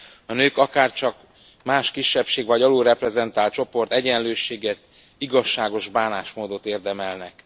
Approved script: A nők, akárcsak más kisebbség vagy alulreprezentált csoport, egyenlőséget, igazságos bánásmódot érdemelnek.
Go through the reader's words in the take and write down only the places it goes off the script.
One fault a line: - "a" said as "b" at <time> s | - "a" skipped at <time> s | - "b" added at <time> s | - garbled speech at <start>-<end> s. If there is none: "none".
none